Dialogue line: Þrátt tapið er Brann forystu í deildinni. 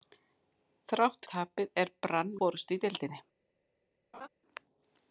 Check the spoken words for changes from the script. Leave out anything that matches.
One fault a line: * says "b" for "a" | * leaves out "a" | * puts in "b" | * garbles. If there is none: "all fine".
all fine